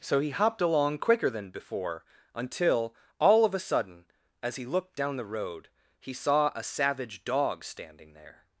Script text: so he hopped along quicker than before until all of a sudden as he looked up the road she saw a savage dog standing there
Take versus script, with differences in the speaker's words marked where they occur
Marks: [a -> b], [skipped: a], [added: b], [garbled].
so he hopped along quicker than before until all of a sudden as he looked [up -> down] the road [she -> he] saw a savage dog standing there